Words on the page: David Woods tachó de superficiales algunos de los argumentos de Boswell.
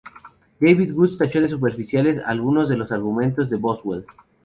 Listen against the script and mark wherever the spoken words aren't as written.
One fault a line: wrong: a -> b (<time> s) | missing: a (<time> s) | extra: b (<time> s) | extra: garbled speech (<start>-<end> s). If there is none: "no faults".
no faults